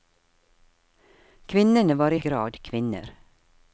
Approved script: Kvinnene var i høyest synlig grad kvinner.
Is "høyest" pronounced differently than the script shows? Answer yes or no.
yes